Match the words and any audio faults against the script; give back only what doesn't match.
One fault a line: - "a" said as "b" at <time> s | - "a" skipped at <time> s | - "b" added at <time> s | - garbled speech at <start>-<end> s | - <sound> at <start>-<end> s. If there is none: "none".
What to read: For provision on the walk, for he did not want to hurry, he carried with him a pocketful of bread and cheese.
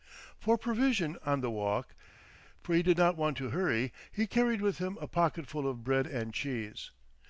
none